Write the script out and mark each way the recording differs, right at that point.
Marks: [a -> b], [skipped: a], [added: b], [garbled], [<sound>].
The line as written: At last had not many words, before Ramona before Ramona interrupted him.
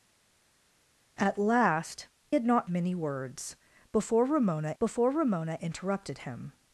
At last had not many words, before Ramona before Ramona interrupted him.